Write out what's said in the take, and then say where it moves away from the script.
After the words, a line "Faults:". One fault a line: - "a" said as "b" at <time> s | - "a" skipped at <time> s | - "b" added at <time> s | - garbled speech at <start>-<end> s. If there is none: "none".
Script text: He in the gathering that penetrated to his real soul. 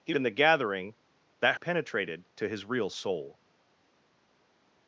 He in the gathering that penetrated to his real soul.
Faults:
none